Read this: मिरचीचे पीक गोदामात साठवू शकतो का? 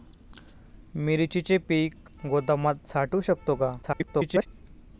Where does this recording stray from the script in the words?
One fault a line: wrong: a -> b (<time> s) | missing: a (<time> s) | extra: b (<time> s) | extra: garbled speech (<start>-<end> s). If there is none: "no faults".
extra: garbled speech (3.8-4.5 s)